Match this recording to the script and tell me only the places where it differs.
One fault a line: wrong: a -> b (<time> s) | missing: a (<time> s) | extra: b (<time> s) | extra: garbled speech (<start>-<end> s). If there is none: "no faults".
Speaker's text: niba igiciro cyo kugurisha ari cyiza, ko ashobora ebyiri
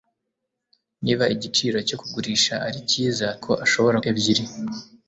no faults